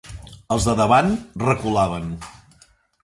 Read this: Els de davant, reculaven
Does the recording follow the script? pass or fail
pass